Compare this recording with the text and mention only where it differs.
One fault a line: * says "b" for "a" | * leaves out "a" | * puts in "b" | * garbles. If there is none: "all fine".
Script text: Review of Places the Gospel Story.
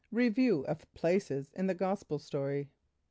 * puts in "in"